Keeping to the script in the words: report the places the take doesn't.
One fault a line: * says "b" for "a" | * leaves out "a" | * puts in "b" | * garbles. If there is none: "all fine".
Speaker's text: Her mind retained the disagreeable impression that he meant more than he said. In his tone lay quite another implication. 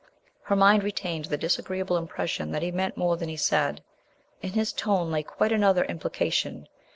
all fine